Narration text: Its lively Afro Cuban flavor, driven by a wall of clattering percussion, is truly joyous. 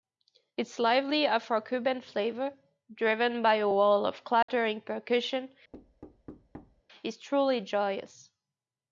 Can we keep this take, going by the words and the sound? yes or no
no